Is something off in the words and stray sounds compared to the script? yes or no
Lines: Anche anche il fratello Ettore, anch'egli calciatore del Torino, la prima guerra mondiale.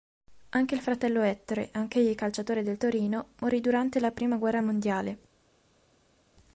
yes